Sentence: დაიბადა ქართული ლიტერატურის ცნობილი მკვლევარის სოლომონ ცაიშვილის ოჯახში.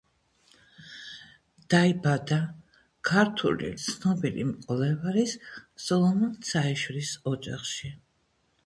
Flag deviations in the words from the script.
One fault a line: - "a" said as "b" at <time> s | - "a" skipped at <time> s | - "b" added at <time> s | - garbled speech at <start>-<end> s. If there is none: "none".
- "ლიტერატურის" skipped at 3.7 s